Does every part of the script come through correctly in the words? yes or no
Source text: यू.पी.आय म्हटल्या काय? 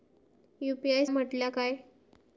yes